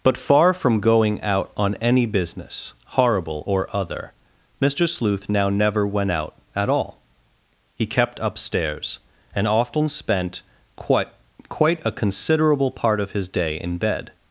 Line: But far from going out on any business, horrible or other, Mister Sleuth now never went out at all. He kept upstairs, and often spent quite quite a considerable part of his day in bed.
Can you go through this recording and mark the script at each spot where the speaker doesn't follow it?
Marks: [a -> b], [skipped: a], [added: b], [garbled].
But far from going out on any business, horrible or other, Mister Sleuth now never went out at all. He kept upstairs, and often spent quite quite a considerable part of his day in bed.